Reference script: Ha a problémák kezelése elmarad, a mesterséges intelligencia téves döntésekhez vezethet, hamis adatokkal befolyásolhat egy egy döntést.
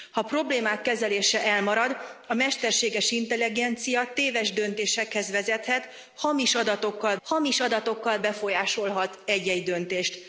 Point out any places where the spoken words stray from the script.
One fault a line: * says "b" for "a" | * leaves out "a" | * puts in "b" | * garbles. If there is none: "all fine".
* puts in "hamis adatokkal"